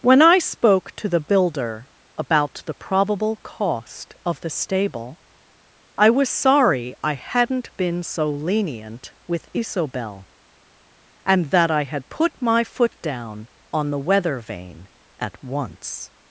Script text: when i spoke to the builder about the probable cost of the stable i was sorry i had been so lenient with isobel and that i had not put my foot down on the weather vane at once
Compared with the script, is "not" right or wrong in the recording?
wrong